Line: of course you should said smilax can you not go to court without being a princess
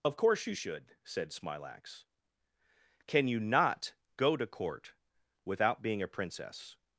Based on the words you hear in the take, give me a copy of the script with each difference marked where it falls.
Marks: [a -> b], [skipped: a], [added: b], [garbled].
of course you should said smilax can you not go to court without being a princess